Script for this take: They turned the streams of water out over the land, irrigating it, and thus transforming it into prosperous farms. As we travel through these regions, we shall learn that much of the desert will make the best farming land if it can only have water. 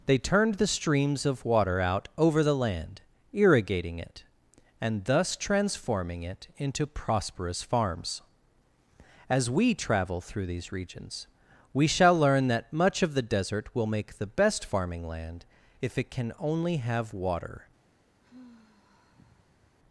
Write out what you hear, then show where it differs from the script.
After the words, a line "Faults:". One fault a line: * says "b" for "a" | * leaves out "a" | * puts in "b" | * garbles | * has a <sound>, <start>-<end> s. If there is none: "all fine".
They turned the streams of water out over the land, irrigating it, and thus transforming it into prosperous farms. As we travel through these regions, we shall learn that much of the desert will make the best farming land if it can only have water.
Faults:
* has a sigh, 18.2-19.8 s